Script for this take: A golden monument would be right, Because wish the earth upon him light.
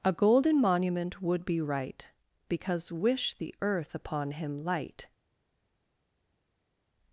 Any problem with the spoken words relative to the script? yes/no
no